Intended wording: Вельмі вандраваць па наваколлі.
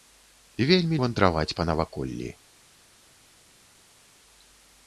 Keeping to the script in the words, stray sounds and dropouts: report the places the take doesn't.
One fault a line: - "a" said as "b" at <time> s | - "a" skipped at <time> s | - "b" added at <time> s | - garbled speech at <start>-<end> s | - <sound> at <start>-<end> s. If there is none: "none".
none